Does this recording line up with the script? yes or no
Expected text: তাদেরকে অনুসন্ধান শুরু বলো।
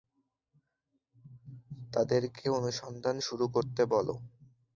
no